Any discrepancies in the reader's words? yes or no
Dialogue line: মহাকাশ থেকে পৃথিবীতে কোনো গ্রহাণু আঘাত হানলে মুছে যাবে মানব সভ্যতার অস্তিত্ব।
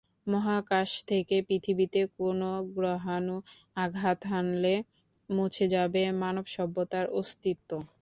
no